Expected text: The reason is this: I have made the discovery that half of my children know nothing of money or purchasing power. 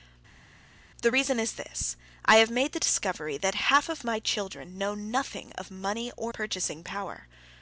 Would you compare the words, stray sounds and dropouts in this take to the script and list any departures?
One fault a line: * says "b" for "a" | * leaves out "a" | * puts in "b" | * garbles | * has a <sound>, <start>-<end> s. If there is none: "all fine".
all fine